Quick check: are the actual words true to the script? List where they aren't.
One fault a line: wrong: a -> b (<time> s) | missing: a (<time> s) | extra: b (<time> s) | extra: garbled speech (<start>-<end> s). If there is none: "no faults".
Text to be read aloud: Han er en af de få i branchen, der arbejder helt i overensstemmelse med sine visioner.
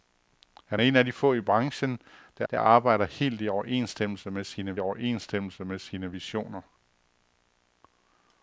extra: der (2.5 s)
extra: overensstemmelse med sine (4.8 s)